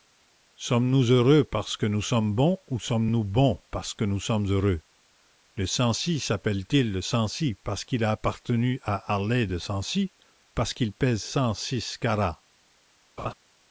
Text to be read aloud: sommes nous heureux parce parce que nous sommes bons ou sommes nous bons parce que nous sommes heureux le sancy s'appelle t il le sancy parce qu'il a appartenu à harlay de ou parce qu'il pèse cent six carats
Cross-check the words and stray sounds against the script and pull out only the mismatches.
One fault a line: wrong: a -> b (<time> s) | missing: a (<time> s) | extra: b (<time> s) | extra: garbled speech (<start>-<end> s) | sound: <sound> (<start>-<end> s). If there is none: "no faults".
missing: parce (1.8 s)
extra: sancy (9.6 s)
sound: laugh (13.2-13.3 s)